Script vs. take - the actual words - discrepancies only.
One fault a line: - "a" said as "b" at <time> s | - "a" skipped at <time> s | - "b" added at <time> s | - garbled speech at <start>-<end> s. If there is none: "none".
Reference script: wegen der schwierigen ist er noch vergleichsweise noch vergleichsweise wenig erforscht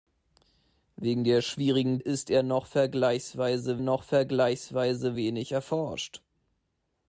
none